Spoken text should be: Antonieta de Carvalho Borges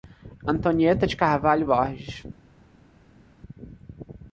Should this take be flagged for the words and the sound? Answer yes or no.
no